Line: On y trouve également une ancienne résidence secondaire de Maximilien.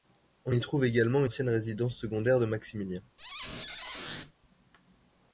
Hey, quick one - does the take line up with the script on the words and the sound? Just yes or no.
no